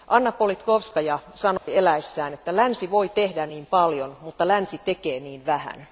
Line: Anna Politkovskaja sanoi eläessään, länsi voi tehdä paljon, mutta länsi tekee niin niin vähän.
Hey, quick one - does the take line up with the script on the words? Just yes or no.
no